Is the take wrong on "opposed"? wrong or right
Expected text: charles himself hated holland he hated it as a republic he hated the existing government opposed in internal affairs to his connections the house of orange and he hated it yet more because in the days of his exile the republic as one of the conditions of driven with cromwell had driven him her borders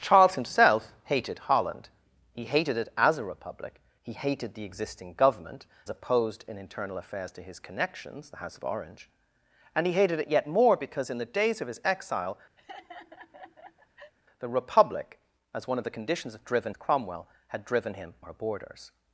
right